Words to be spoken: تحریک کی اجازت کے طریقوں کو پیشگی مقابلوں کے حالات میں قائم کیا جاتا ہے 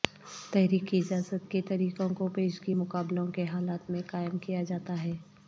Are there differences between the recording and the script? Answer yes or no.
no